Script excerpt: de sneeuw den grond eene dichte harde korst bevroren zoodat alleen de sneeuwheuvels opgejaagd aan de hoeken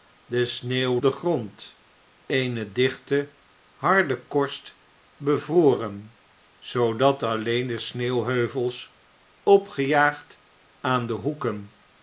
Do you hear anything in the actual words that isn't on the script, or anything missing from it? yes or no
no